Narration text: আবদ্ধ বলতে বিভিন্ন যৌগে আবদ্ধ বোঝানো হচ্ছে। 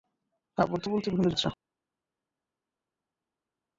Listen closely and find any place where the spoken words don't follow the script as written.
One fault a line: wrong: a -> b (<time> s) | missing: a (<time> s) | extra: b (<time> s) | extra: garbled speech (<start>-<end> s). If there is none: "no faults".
missing: যৌগে আবদ্ধ বোঝানো (1.3 s)